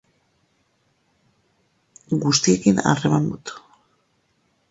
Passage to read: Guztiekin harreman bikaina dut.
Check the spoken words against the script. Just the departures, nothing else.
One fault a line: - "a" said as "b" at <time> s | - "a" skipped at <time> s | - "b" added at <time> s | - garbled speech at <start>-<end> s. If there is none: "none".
- "bikaina" skipped at 3.3 s